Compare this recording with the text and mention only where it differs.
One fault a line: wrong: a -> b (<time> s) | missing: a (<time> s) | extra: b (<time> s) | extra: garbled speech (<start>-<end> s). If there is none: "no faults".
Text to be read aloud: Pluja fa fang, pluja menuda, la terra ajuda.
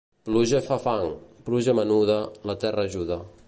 no faults